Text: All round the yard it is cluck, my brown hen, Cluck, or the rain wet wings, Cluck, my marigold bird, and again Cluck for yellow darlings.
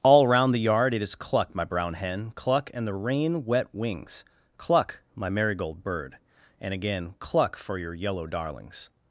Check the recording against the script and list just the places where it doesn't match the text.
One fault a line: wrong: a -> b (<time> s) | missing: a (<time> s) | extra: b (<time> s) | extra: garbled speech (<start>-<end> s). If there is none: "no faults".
wrong: or -> and (2.7 s)
extra: your (7.8 s)